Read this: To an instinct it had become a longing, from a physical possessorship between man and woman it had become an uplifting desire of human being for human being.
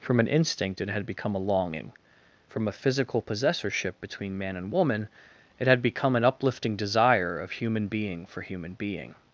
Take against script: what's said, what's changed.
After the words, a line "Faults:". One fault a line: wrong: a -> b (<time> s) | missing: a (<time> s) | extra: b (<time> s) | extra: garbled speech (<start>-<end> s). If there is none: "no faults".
From an instinct it had become a longing, from a physical possessorship between man and woman it had become an uplifting desire of human being for human being.
Faults:
wrong: To -> From (0.0 s)